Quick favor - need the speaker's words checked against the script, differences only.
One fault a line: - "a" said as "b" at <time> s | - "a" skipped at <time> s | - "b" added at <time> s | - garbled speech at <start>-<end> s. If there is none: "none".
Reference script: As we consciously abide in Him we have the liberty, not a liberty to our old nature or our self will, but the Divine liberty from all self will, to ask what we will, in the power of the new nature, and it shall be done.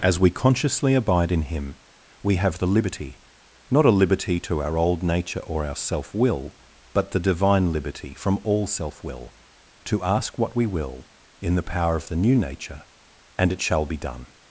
none